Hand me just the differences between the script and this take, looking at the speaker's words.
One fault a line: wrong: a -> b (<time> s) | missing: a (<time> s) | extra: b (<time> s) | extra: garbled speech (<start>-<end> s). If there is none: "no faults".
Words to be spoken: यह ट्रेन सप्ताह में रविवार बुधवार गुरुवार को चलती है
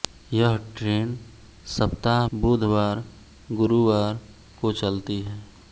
missing: में रविवार (2.2 s)